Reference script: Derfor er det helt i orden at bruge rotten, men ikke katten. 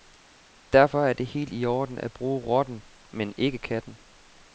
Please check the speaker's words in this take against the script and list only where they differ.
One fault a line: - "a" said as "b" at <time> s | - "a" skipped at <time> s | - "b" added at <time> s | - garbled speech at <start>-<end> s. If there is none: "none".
none